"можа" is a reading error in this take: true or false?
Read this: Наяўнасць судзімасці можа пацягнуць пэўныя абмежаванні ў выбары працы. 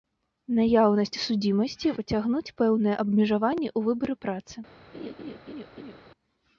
true